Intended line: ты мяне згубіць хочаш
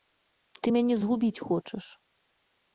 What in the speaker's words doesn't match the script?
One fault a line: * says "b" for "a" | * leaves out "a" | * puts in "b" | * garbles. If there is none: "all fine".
all fine